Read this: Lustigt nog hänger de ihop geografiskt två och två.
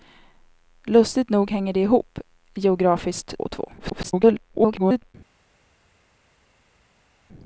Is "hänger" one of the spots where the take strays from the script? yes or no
no